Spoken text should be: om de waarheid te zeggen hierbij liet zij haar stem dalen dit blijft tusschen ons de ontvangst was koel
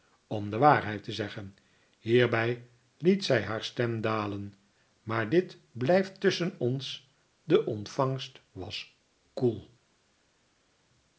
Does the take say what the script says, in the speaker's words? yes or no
no